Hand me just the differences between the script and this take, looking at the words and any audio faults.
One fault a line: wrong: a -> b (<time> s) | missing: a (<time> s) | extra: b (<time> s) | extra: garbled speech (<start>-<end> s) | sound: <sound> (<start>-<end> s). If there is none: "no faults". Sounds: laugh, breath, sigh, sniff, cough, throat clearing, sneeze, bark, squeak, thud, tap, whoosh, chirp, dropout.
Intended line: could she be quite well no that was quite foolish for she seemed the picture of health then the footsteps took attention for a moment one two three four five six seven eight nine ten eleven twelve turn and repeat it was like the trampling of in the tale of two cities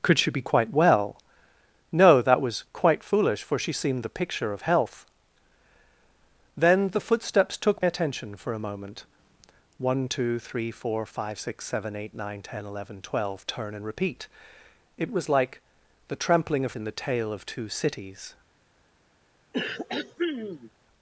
sound: throat clearing (19.5-20.7 s)